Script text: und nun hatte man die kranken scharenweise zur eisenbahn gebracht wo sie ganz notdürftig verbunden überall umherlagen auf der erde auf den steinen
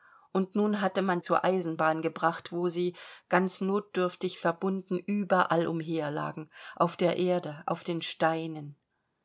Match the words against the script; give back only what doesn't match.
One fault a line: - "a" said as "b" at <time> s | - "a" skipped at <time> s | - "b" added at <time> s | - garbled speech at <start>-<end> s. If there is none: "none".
- "die kranken scharenweise" skipped at 1.2 s